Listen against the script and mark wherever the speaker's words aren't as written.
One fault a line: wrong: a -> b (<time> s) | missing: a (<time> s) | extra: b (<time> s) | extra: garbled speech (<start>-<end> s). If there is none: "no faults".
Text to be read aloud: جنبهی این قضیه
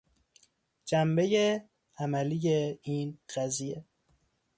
extra: عملی (2.0 s)